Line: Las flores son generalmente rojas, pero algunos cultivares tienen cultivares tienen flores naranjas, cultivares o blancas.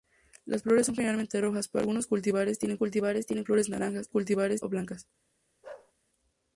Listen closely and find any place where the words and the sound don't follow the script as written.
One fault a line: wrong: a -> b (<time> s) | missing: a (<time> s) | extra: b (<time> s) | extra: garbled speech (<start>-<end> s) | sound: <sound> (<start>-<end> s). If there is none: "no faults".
sound: bark (5.6-5.9 s)